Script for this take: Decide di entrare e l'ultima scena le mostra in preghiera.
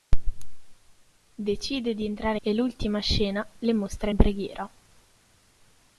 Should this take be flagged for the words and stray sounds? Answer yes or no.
no